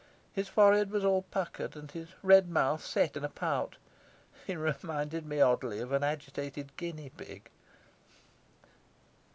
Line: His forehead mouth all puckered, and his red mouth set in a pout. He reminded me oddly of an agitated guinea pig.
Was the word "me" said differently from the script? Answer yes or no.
no